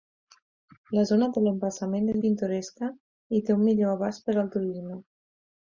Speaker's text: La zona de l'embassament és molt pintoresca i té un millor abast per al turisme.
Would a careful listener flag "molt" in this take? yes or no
yes